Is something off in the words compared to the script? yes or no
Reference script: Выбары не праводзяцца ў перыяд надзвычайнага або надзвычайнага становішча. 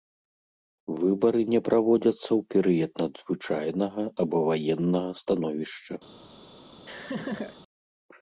yes